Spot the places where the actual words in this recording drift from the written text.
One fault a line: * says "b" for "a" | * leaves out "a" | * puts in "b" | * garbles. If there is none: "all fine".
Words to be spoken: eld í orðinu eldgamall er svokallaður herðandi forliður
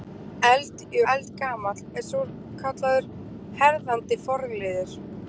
* leaves out "orðinu"